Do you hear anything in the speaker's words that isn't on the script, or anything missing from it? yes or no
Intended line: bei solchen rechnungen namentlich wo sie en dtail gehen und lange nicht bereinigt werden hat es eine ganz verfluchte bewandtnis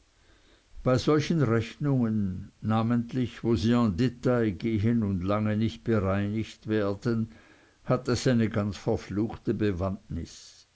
no